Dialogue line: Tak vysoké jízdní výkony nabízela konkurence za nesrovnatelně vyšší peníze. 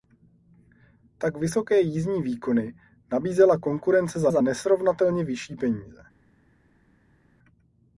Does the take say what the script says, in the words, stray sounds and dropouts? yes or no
no